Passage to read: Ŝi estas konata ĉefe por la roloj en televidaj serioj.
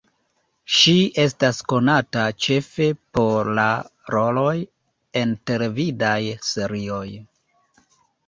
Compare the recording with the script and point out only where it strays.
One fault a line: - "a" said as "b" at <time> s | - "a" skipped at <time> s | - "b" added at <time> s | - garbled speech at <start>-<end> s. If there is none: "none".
none